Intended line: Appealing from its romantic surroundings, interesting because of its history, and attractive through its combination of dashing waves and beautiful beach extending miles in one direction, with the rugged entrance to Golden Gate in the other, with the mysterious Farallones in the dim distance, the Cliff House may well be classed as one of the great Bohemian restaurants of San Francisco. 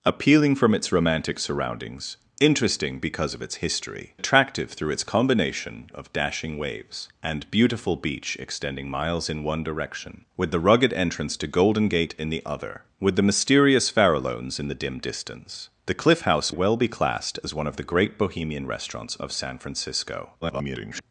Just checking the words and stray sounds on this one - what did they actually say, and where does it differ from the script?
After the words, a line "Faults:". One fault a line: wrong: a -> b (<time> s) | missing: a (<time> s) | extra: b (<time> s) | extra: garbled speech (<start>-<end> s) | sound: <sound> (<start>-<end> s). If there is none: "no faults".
Appealing from its romantic surroundings, interesting because of its history, attractive through its combination of dashing waves and beautiful beach extending miles in one direction, with the rugged entrance to Golden Gate in the other, with the mysterious Farallones in the dim distance, the Cliff House well be classed as one of the great Bohemian restaurants of San Francisco. [garbled]
Faults:
missing: and (4.2 s)
missing: may (16.5 s)
extra: garbled speech (20.4-21.0 s)